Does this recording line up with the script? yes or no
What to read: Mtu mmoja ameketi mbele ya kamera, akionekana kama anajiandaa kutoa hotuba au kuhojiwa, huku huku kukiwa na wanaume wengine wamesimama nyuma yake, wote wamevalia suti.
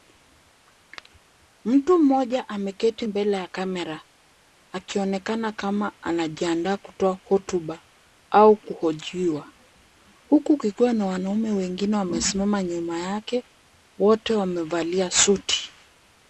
no